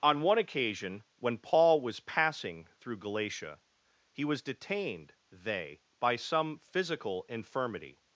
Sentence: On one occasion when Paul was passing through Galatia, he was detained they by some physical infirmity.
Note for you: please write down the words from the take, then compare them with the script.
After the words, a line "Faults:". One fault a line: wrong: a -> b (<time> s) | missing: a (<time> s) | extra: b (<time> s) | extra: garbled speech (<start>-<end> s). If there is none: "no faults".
On one occasion when Paul was passing through Galatia, he was detained they by some physical infirmity.
Faults:
no faults